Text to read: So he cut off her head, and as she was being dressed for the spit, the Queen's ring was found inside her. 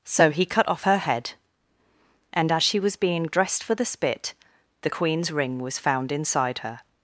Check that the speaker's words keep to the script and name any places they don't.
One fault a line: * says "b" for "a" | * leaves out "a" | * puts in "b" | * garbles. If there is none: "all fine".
all fine